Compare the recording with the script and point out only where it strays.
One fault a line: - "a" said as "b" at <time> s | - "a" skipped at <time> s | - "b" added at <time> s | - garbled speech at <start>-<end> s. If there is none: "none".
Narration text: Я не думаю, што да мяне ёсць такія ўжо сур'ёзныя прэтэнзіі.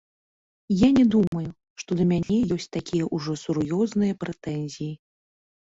none